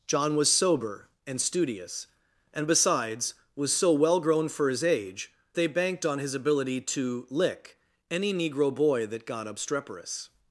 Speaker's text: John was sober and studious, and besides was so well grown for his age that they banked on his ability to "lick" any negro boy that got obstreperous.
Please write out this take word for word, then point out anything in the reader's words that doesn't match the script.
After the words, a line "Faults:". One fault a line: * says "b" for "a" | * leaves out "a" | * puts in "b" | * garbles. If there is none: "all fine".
John was sober and studious, and besides was so well grown for his age they banked on his ability to "lick" any negro boy that got obstreperous.
Faults:
* leaves out "that"